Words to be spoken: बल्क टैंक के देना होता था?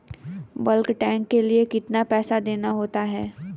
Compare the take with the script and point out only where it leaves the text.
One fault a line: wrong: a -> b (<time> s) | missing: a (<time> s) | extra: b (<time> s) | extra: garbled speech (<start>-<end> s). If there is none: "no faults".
extra: लिए कितना पैसा (1.4 s)
wrong: था -> है (3.0 s)